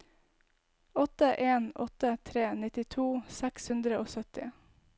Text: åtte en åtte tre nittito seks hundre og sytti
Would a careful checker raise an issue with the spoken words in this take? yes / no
no